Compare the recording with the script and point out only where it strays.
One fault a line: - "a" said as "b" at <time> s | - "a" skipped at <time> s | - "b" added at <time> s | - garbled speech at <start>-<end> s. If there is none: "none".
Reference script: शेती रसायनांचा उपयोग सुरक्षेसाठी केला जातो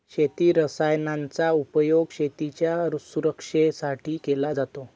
- "शेतीच्या" added at 2.1 s